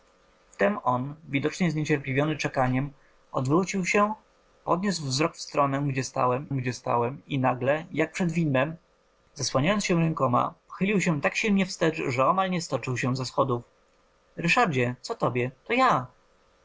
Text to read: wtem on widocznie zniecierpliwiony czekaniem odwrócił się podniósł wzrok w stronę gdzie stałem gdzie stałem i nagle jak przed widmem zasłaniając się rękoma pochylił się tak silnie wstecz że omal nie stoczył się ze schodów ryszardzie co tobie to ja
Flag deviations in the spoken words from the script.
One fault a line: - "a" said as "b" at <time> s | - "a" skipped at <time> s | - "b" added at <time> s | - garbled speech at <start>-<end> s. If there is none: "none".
none